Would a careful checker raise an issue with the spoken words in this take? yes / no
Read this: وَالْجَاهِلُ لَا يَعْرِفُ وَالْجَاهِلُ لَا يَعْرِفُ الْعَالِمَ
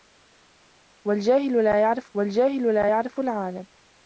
no